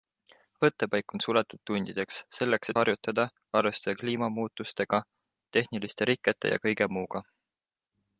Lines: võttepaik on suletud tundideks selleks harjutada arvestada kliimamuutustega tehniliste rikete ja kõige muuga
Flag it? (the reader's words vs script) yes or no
no